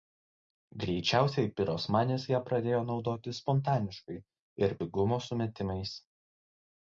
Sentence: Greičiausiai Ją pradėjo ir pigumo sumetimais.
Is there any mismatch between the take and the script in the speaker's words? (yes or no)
yes